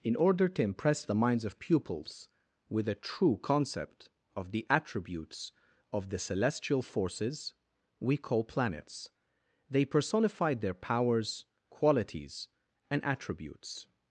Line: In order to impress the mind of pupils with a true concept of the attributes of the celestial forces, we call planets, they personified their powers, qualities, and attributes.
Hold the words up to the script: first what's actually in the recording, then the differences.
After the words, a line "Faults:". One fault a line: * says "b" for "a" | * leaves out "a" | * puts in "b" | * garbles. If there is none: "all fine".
In order to impress the minds of pupils with a true concept of the attributes of the celestial forces, we call planets, they personified their powers, qualities, and attributes.
Faults:
* says "minds" for "mind"